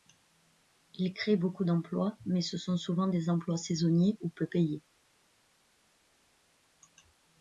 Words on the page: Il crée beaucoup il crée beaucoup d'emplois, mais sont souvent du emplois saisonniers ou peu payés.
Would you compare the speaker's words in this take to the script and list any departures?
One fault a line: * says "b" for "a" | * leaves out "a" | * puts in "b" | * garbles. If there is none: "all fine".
* leaves out "il crée beaucoup"
* puts in "ce"
* says "des" for "du"